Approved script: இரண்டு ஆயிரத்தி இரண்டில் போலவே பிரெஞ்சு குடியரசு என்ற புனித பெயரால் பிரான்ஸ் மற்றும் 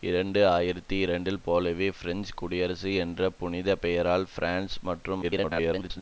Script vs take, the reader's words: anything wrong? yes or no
yes